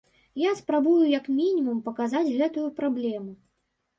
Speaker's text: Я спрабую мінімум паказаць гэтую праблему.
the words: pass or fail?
fail